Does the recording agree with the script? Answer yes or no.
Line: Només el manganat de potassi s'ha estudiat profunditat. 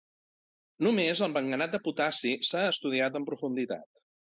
no